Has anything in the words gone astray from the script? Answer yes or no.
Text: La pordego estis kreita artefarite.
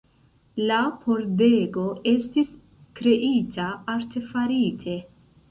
no